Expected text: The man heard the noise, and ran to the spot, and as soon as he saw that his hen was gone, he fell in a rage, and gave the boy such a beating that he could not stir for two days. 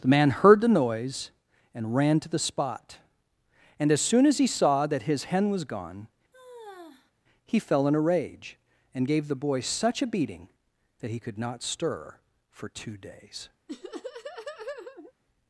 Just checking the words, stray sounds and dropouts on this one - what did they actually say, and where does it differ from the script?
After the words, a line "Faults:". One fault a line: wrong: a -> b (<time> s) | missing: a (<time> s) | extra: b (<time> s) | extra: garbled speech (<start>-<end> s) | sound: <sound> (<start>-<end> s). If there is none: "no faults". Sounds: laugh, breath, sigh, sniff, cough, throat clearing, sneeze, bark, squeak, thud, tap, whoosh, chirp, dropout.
The man heard the noise, and ran to the spot, and as soon as he saw that his hen was gone, he fell in a rage, and gave the boy such a beating that he could not stir for two days.
Faults:
sound: sigh (6.3-7.1 s)
sound: laugh (13.7-15.1 s)